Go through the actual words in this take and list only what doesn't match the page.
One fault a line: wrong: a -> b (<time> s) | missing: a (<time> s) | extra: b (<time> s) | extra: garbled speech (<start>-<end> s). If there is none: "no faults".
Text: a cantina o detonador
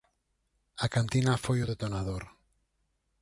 extra: foi (1.4 s)